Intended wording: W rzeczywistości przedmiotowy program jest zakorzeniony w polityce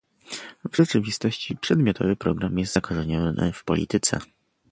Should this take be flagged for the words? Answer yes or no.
no